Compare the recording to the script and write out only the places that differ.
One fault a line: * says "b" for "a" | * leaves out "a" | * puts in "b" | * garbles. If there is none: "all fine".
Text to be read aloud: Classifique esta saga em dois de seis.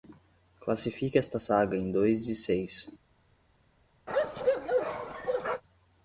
all fine